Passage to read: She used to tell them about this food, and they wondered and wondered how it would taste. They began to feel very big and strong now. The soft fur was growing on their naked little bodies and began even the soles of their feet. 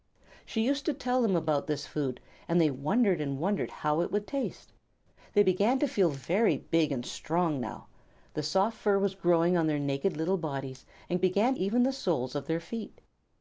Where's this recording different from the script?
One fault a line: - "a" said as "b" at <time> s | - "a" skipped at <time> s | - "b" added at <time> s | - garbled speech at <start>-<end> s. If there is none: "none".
none